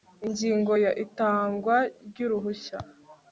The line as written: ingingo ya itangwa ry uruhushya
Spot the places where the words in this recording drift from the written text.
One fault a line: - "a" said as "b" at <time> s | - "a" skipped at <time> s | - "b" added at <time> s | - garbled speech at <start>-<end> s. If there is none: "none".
none